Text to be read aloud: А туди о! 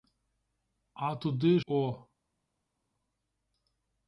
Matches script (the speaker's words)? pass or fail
pass